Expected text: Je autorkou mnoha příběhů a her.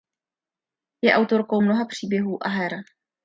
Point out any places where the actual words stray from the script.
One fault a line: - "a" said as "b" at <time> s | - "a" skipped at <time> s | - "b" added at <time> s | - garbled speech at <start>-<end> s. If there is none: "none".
none